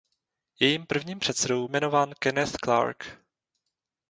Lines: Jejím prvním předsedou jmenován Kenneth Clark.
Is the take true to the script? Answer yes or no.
yes